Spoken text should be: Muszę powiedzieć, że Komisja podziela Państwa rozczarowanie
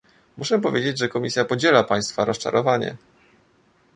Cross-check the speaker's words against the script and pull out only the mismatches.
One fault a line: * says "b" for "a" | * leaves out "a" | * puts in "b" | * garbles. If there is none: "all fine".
all fine